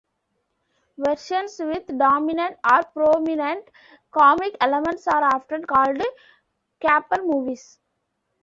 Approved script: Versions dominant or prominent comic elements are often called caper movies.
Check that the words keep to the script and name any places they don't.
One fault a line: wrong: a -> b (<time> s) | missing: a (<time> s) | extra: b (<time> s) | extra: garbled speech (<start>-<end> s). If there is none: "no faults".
extra: with (1.6 s)